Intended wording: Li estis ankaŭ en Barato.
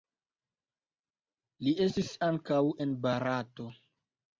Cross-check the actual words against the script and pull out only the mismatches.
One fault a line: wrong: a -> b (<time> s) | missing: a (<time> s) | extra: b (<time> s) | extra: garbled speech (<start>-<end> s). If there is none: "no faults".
no faults